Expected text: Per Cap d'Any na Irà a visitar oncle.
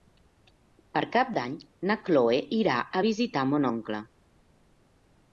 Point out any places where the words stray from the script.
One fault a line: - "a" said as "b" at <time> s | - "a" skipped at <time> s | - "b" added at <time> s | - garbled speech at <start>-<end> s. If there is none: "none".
- "Cloè" added at 2.1 s
- "mon" added at 3.5 s